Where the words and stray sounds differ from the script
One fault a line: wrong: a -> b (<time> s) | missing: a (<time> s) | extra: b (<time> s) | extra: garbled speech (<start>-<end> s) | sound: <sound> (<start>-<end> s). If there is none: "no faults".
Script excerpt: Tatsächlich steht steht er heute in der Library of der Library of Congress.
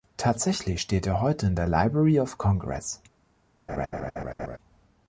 missing: steht (1.1 s)
missing: der Library of (2.4 s)
sound: laugh (3.7-4.6 s)